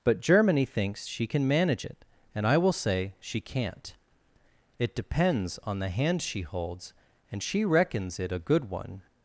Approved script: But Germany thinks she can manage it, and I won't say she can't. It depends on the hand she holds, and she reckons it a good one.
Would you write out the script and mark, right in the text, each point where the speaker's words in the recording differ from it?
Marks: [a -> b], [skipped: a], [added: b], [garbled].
But Germany thinks she can manage it, and I [won't -> will] say she can't. It depends on the hand she holds, and she reckons it a good one.